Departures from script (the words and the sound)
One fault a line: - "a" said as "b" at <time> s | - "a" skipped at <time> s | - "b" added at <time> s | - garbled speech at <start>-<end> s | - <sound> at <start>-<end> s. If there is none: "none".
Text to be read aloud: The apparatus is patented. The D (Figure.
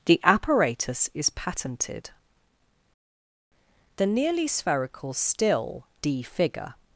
- "nearly spherical still" added at 4.1 s